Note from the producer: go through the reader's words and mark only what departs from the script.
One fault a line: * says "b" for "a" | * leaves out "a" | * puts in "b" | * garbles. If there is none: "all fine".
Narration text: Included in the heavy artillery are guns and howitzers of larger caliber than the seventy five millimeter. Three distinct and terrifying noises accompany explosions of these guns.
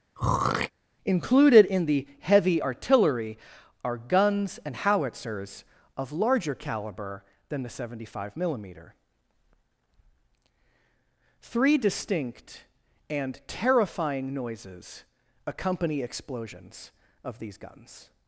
all fine